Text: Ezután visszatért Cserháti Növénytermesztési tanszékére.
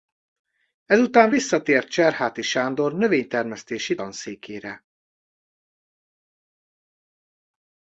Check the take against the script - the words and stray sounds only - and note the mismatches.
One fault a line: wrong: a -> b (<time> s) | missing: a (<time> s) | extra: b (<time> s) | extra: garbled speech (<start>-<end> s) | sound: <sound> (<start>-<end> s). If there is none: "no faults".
extra: Sándor (2.4 s)